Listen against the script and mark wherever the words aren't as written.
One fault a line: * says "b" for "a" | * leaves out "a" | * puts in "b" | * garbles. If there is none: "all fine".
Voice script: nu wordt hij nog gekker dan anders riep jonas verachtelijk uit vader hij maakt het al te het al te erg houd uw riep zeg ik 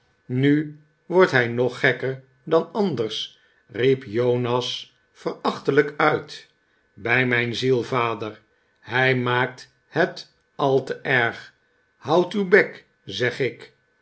* puts in "bij mijn ziel"
* leaves out "het al te"
* says "bek" for "riep"